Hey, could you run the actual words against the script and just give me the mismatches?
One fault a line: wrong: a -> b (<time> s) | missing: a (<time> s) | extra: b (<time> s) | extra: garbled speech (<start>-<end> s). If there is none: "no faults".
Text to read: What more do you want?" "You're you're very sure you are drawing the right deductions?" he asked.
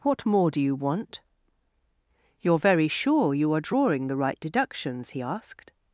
missing: you're (2.6 s)